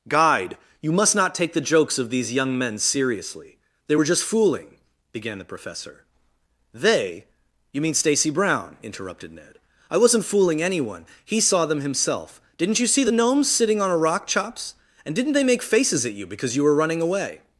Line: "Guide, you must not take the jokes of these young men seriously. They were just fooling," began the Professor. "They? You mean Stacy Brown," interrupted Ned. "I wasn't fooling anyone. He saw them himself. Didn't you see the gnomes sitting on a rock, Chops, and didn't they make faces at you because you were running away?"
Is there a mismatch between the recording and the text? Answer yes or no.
no